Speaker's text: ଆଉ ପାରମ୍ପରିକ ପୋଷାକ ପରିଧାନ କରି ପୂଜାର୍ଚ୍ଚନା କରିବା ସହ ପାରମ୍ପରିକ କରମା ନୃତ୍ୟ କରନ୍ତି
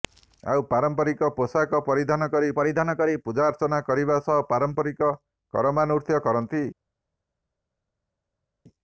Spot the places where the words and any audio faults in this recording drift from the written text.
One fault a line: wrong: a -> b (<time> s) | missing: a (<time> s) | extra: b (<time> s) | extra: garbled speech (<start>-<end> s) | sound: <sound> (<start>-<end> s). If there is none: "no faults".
extra: ପରିଧାନ କରି (2.6 s)